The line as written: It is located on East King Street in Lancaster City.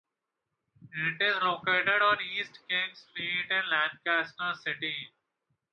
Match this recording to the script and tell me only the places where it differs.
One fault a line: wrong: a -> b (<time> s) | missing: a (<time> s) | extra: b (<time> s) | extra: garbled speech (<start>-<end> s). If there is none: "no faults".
no faults